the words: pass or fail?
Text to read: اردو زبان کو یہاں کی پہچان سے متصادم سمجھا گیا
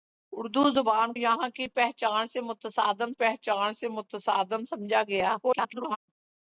fail